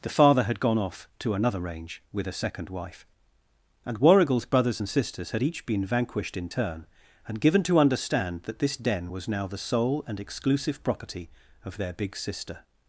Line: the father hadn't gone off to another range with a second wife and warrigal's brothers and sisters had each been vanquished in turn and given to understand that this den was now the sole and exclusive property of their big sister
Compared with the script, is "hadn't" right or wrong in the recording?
wrong